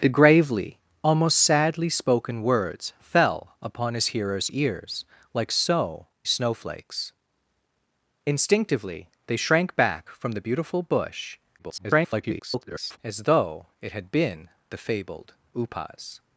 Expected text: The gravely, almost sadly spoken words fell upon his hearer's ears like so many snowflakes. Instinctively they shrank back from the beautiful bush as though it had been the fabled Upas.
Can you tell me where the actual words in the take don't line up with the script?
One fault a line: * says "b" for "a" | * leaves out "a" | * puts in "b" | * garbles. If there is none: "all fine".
* leaves out "many"
* garbles